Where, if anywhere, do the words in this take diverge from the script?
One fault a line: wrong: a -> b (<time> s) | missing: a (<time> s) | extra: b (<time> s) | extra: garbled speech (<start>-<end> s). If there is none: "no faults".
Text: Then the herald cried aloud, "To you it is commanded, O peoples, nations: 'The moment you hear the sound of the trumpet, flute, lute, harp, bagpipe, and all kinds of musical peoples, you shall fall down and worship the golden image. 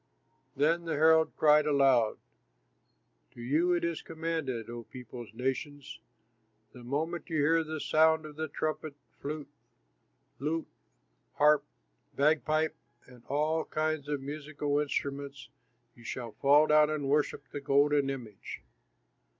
wrong: peoples -> instruments (14.8 s)